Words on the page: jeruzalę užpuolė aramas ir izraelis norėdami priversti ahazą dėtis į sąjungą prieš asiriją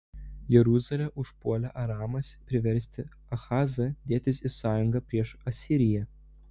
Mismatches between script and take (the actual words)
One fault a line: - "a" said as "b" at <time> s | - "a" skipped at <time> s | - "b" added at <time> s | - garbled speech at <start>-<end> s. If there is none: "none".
- "ir izraelis norėdami" skipped at 2.3 s